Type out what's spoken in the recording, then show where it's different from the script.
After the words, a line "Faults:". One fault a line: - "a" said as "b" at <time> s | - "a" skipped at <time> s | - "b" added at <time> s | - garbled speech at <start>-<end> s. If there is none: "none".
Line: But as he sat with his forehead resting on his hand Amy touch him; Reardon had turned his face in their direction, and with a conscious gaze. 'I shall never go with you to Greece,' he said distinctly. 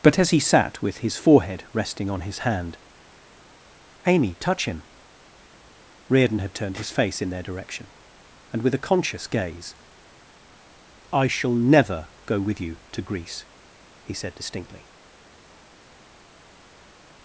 But as he sat with his forehead resting on his hand Amy touch him; Reardon had turned his face in their direction, and with a conscious gaze. 'I shall never go with you to Greece,' he said distinctly.
Faults:
none